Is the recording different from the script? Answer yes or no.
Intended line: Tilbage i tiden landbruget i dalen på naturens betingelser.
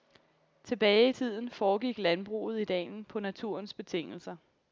yes